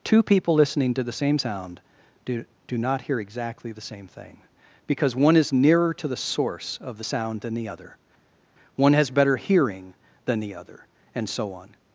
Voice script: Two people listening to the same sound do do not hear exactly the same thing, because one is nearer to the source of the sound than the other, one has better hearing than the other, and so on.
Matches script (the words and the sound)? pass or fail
pass